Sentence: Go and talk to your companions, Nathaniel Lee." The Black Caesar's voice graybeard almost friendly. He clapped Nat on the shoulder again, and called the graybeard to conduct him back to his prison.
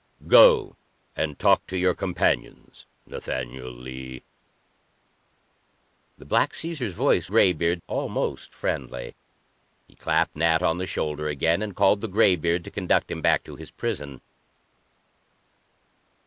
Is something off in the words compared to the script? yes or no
no